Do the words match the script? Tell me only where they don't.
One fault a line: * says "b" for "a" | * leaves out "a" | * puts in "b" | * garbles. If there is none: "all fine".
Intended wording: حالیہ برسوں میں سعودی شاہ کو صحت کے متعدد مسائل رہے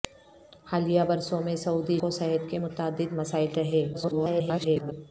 * leaves out "شاہ"
* garbles